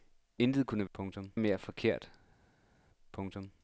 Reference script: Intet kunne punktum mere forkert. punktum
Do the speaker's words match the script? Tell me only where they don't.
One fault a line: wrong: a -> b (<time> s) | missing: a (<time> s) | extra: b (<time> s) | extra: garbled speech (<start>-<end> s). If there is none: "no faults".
no faults